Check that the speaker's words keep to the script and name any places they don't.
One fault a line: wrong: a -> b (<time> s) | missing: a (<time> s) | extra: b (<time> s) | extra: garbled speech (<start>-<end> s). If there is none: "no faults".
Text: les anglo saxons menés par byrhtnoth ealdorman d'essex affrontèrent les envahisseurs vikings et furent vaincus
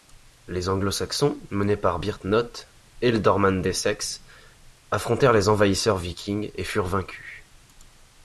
no faults